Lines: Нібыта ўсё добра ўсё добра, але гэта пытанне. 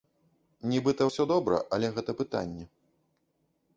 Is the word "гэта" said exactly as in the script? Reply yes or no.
yes